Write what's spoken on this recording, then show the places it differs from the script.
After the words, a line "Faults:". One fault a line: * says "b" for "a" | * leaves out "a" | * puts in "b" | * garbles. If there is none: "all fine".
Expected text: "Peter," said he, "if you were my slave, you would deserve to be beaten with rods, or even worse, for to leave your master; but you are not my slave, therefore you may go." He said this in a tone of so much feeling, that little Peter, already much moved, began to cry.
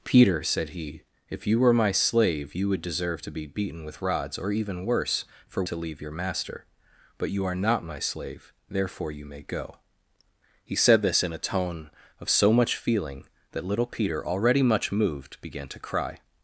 "Peter," said he, "if you were my slave, you would deserve to be beaten with rods, or even worse, for to leave your master; but you are not my slave, therefore you may go." He said this in a tone of so much feeling, that little Peter, already much moved, began to cry.
Faults:
all fine